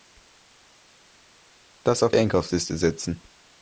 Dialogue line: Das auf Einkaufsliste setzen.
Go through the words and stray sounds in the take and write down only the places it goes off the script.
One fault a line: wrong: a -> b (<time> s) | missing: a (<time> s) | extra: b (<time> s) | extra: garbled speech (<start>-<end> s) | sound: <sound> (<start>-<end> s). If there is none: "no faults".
no faults